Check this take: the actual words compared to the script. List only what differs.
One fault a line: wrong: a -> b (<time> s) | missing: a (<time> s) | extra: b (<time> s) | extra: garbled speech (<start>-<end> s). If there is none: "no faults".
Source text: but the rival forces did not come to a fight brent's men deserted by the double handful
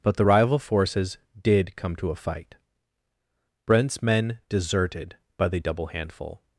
missing: not (1.8 s)